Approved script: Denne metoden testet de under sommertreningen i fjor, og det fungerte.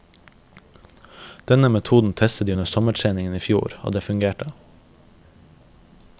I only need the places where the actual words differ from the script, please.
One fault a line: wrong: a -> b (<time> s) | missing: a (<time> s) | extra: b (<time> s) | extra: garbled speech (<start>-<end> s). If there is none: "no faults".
no faults